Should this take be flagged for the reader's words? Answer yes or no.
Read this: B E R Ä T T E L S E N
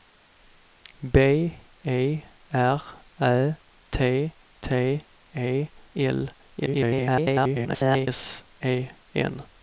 yes